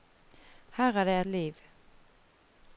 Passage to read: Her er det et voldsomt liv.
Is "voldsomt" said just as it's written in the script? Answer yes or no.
no